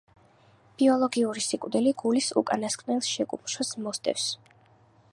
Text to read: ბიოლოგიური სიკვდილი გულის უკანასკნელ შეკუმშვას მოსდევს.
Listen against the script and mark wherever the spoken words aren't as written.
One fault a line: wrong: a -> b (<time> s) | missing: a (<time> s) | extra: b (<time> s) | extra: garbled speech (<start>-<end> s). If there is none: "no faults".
no faults